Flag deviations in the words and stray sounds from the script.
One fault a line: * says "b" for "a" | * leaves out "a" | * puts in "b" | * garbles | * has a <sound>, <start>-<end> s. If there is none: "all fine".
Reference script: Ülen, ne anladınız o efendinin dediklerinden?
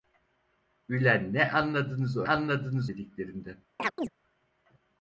* says "anladınız" for "efendinin"
* has a chirp, 3.8-4.1 s